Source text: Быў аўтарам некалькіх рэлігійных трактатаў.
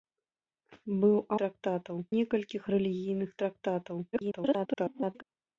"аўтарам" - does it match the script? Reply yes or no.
no